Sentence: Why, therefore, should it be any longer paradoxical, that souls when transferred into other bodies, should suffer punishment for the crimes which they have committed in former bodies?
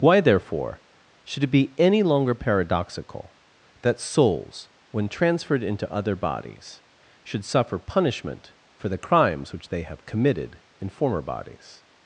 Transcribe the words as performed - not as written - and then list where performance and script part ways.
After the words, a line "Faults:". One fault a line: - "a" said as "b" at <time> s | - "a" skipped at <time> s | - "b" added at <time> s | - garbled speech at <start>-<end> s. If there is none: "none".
Why, therefore, should it be any longer paradoxical, that souls when transferred into other bodies, should suffer punishment for the crimes which they have committed in former bodies?
Faults:
none